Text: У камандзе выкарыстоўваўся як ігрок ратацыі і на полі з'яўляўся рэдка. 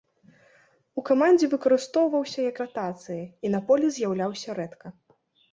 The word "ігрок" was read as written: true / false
false